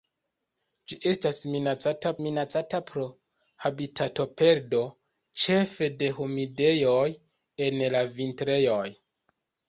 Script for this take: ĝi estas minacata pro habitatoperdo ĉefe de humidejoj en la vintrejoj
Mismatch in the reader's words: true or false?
true